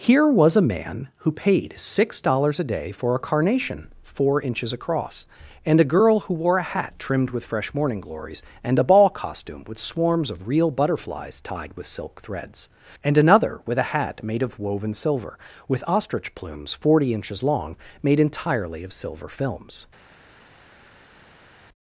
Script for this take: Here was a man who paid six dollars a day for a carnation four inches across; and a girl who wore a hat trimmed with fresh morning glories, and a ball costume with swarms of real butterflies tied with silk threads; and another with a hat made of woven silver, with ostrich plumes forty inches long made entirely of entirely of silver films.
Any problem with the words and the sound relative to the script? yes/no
yes